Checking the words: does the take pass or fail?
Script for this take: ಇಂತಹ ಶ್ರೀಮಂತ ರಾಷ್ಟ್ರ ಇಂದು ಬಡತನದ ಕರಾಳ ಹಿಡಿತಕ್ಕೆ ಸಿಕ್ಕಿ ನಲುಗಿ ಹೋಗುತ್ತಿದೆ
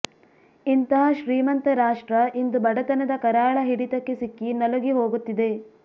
pass